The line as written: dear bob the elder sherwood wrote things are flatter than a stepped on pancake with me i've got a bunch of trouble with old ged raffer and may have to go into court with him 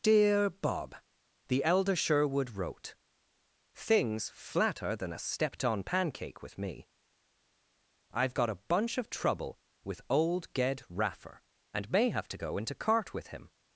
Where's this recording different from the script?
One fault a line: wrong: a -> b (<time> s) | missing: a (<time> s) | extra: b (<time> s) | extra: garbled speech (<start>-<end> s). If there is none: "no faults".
missing: are (4.3 s)
wrong: court -> cart (12.7 s)